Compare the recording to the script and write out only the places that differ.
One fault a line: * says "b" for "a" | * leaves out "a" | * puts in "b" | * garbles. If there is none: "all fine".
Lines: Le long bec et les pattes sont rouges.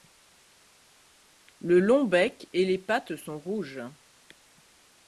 all fine